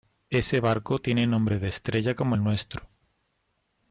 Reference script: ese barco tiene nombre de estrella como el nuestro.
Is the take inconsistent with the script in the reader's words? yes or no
no